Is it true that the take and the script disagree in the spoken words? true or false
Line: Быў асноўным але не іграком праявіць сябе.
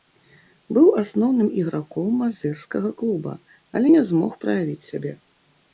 true